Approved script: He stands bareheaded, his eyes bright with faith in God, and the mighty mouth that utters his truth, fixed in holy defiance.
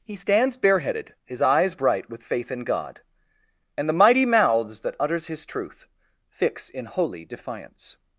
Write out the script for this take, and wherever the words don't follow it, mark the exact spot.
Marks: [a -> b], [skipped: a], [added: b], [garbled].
He stands bareheaded, his eyes bright with faith in God, and the mighty [mouth -> mouths] that utters his truth, [fixed -> fix] in holy defiance.